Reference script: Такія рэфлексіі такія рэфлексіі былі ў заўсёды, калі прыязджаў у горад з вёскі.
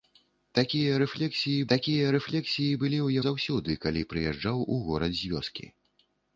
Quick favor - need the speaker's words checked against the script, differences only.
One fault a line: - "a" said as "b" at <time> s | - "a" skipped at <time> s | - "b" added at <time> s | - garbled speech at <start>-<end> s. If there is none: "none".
none